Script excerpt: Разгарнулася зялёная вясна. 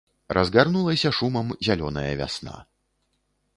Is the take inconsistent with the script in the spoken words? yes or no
yes